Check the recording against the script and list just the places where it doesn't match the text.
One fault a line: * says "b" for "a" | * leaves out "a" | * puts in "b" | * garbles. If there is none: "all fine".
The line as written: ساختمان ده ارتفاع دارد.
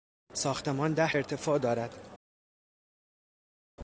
all fine